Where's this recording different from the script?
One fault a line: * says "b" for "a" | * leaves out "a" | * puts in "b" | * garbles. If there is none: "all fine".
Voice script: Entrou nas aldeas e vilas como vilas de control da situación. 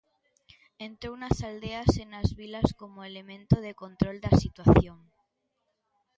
* puts in "nas"
* says "elemento" for "vilas"